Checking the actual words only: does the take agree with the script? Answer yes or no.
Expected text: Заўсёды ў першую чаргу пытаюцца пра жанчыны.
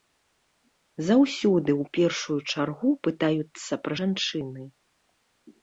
yes